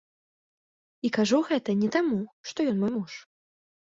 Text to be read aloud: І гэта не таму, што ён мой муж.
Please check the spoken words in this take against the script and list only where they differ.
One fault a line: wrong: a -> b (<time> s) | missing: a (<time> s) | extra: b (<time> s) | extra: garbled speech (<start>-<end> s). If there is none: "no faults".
extra: кажу (1.2 s)